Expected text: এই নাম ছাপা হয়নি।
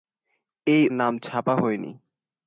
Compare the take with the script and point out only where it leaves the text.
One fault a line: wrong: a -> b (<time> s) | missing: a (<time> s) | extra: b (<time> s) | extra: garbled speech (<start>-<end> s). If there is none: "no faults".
no faults